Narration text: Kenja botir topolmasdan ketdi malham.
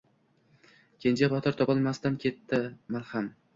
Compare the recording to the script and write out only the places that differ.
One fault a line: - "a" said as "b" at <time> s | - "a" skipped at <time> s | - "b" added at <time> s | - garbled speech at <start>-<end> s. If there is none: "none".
none